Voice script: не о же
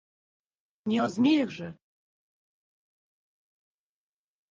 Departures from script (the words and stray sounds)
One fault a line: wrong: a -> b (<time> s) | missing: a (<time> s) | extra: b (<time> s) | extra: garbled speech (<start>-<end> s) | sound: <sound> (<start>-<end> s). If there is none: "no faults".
extra: змеях (1.1 s)